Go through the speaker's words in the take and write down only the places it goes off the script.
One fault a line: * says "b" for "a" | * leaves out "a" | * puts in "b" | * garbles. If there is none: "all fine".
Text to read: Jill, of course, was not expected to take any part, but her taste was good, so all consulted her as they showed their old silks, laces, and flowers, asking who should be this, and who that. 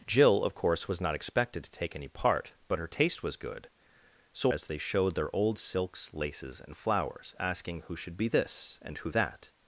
* leaves out "all consulted her"